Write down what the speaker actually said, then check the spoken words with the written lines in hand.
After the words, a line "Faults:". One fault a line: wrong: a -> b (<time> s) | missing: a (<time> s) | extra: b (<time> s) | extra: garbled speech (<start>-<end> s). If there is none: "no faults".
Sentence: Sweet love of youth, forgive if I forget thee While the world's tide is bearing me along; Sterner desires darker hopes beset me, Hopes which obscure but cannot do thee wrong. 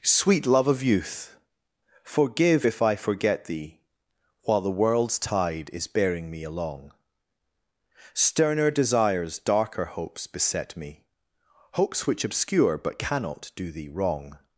Sweet love of youth, forgive if I forget thee While the world's tide is bearing me along; Sterner desires darker hopes beset me, Hopes which obscure but cannot do thee wrong.
Faults:
no faults